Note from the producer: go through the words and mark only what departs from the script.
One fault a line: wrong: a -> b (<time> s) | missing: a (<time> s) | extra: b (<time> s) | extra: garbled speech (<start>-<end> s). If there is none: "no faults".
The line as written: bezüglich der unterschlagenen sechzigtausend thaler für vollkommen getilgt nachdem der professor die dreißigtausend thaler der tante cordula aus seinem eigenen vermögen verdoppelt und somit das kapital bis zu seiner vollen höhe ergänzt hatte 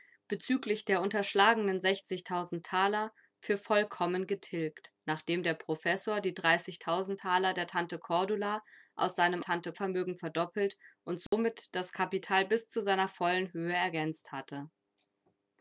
wrong: eigenen -> tante (9.4 s)